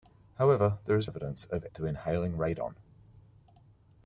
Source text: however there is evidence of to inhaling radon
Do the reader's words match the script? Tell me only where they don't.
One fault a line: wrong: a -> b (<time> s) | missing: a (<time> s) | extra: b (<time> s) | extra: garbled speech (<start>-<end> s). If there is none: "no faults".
no faults